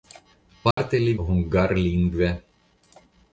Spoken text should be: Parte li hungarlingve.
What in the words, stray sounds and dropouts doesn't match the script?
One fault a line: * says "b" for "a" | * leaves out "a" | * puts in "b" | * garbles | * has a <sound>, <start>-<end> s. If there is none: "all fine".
* has a dropout, 0.7-0.8 s